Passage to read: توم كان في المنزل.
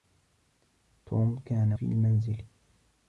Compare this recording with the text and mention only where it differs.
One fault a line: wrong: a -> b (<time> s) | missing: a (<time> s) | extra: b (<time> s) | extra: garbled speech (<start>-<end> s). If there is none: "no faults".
no faults